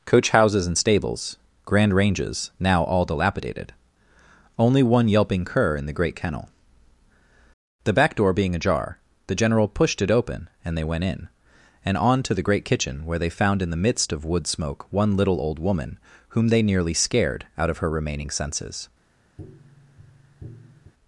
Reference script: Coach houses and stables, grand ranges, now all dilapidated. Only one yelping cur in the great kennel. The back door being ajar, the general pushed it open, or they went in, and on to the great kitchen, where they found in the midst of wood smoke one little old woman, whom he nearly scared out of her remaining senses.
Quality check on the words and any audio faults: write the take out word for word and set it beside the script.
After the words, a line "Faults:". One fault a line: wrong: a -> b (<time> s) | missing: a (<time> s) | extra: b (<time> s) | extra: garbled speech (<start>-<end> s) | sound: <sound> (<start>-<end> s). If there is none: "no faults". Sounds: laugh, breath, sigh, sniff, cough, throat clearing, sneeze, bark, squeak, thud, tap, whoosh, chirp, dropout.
Coach houses and stables, grand ranges, now all dilapidated. Only one yelping cur in the great kennel. The back door being ajar, the general pushed it open, and they went in, and on to the great kitchen, where they found in the midst of wood smoke one little old woman, whom they nearly scared out of her remaining senses.
Faults:
wrong: or -> and (10.7 s)
wrong: he -> they (16.5 s)
sound: tap (19.4-20.9 s)